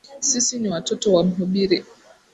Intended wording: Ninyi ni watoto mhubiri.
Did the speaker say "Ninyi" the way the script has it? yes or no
no